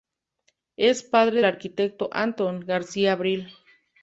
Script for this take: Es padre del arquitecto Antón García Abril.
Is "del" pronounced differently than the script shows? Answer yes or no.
yes